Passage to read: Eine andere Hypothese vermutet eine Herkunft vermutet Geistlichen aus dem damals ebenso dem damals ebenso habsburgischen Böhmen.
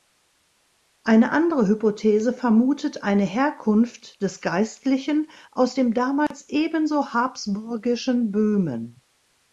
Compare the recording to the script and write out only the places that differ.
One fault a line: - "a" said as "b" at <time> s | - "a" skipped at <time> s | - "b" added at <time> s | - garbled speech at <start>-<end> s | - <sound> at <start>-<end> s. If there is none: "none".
- "vermutet" said as "des" at 4.2 s
- dropout at 6.3-6.3 s
- "dem damals ebenso" skipped at 7.1 s